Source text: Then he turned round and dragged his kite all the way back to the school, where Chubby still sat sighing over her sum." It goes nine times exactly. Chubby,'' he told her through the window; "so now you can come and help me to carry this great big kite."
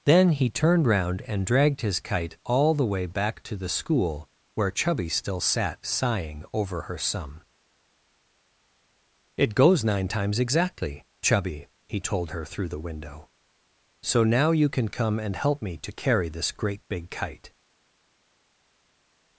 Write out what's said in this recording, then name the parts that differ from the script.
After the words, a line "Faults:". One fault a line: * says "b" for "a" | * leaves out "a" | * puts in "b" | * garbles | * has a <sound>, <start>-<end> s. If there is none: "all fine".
Then he turned round and dragged his kite all the way back to the school, where Chubby still sat sighing over her sum." It goes nine times exactly. Chubby,'' he told her through the window; "so now you can come and help me to carry this great big kite."
Faults:
all fine